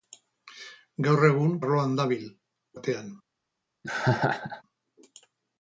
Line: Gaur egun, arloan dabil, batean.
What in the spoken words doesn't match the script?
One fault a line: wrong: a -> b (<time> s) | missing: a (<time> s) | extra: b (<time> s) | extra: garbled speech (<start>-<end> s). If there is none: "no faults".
no faults